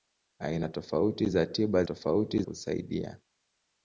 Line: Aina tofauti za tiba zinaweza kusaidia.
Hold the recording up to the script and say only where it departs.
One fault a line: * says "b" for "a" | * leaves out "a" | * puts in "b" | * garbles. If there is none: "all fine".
* says "tofauti" for "zinaweza"